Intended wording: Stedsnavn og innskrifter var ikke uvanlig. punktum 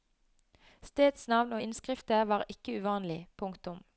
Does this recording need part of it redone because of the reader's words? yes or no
no